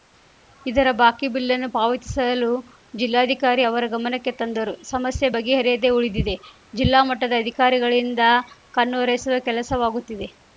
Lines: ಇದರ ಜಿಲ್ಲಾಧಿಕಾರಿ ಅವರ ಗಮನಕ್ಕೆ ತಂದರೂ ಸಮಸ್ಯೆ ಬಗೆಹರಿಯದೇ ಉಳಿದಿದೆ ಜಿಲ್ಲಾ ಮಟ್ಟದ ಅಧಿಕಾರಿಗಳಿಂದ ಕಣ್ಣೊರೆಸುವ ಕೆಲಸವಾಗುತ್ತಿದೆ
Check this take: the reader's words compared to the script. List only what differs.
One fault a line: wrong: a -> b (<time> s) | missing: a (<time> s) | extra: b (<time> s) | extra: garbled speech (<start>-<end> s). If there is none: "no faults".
extra: ಬಾಕಿ ಬಿಲ್‌ನ್ನು ಪಾವತಿಸಲು (1.0 s)